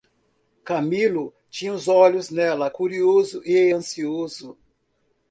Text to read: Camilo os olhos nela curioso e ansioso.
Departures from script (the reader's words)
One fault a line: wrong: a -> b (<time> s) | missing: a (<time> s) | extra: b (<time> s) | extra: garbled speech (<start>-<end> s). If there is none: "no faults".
extra: tinha (1.5 s)